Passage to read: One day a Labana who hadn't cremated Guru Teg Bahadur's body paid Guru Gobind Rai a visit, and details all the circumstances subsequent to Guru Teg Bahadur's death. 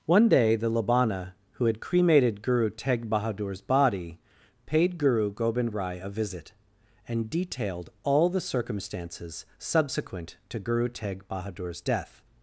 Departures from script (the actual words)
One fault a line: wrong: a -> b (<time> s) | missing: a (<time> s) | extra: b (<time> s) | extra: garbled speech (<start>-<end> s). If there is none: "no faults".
wrong: a -> the (0.6 s)
wrong: hadn't -> had (1.6 s)
wrong: details -> detailed (7.3 s)